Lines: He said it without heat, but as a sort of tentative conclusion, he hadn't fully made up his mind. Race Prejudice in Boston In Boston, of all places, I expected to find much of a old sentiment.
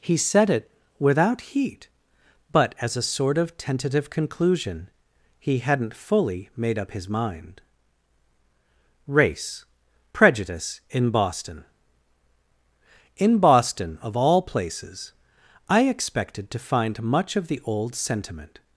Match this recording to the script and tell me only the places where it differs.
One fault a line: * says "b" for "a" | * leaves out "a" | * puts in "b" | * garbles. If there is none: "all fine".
* says "the" for "a"